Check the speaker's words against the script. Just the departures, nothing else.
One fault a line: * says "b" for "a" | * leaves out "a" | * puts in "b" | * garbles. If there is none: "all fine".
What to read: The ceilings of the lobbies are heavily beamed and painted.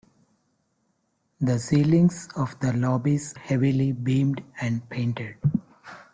* leaves out "are"